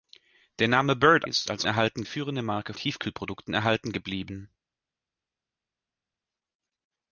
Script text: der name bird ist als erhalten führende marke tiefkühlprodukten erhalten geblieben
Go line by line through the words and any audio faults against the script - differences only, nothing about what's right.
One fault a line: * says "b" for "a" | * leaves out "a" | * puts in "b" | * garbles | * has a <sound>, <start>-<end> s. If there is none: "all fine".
all fine